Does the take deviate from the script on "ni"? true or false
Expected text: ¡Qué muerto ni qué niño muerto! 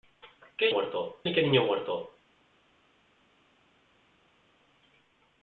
false